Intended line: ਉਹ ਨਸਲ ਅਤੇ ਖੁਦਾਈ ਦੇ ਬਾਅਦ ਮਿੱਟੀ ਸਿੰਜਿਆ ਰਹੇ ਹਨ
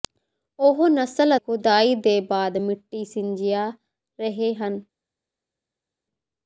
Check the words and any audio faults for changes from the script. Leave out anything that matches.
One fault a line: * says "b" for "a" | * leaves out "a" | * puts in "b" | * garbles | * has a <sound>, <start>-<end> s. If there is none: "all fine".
* leaves out "ਅਤੇ"